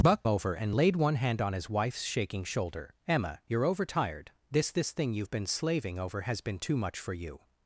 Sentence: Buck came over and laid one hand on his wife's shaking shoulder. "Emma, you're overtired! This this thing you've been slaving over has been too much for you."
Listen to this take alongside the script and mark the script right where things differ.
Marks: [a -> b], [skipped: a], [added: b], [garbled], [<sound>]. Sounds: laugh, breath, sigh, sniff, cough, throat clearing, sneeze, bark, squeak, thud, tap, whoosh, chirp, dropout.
Buck [skipped: came] over and laid one hand on his wife's shaking shoulder. "Emma, you're overtired! This this thing you've been slaving over has been too much for you."